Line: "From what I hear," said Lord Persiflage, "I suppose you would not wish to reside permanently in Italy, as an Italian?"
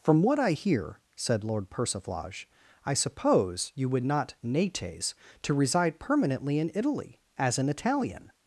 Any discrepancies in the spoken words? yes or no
yes